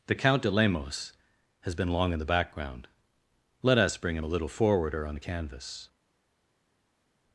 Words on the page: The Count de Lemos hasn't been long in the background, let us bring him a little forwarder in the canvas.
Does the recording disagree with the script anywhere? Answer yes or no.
yes